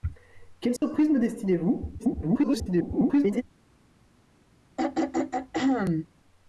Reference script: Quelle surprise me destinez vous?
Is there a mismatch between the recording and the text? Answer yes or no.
yes